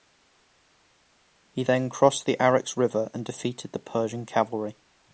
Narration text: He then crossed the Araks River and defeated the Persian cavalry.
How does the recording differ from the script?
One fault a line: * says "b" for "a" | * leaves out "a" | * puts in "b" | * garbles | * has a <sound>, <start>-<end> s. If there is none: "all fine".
all fine